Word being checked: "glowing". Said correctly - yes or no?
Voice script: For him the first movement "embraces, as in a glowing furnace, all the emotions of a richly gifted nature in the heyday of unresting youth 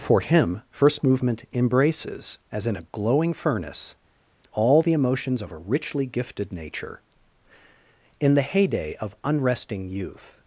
yes